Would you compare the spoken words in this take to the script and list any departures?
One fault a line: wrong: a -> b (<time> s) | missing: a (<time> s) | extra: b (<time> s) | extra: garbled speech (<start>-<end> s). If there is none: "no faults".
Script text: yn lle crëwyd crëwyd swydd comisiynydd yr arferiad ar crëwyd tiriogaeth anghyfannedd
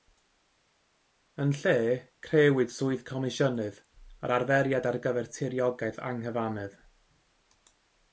missing: crëwyd (2.7 s)
wrong: crëwyd -> gyfer (5.1 s)